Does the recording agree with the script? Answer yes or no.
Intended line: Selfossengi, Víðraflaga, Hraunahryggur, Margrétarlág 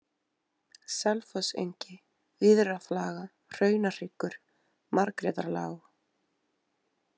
yes